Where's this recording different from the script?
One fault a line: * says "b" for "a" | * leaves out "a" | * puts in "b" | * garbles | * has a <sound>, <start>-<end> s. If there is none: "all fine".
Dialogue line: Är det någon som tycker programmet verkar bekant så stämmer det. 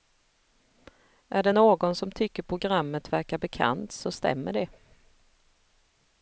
all fine